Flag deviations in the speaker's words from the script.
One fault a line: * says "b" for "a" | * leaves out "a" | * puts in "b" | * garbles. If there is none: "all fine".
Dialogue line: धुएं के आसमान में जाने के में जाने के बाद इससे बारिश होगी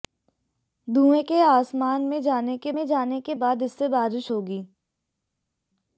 all fine